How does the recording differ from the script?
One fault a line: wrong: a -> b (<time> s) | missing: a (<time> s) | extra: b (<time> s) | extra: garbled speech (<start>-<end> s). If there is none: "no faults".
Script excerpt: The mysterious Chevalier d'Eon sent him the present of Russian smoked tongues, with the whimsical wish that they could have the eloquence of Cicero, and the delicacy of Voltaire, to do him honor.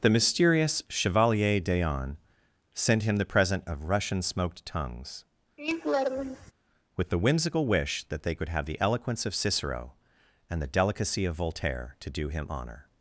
no faults